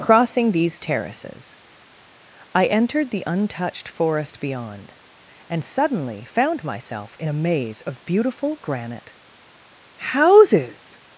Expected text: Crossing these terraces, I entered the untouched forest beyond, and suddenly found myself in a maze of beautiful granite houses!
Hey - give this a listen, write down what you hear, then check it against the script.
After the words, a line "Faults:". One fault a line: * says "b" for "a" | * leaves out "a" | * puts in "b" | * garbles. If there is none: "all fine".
Crossing these terraces, I entered the untouched forest beyond, and suddenly found myself in a maze of beautiful granite houses!
Faults:
all fine